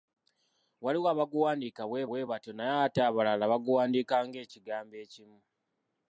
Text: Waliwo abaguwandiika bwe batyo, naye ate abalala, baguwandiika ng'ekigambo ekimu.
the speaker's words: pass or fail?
fail